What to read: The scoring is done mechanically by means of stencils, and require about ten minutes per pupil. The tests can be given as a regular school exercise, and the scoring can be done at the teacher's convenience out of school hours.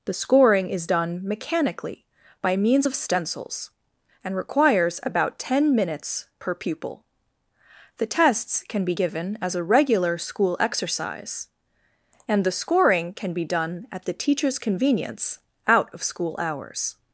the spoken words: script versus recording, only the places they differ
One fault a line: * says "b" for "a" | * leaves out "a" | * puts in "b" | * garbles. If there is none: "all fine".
* says "requires" for "require"